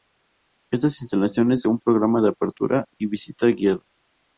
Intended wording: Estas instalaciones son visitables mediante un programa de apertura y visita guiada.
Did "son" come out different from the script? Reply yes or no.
yes